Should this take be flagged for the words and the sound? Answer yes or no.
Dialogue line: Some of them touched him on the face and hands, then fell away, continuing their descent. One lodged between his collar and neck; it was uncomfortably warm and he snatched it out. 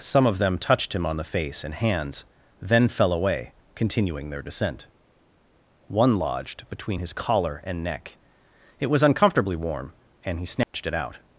yes